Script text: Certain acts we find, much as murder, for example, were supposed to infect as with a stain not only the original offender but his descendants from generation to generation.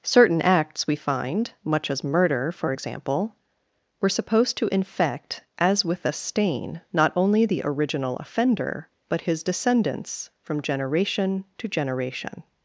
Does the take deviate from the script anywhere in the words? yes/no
no